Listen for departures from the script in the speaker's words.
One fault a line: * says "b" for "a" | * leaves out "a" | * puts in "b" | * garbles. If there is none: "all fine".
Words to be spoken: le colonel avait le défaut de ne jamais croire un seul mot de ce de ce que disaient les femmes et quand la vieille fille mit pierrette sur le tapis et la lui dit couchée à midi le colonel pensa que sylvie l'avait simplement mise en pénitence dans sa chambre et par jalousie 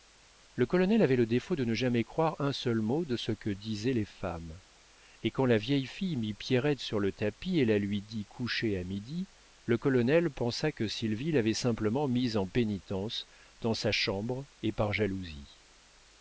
* leaves out "de ce"